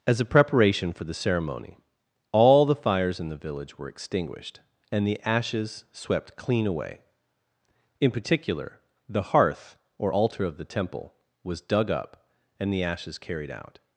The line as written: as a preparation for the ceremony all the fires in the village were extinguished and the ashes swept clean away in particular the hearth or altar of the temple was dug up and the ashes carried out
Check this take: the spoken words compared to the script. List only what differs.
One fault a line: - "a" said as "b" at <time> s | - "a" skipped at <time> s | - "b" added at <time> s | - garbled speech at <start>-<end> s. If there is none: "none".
none